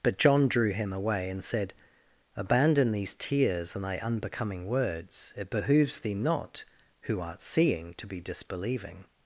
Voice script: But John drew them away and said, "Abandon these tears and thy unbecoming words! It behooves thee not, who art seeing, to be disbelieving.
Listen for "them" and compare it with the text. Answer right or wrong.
wrong